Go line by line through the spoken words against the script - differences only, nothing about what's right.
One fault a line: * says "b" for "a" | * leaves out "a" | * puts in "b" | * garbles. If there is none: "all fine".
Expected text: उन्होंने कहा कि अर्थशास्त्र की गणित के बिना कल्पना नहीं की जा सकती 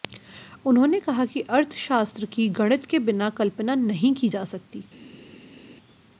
all fine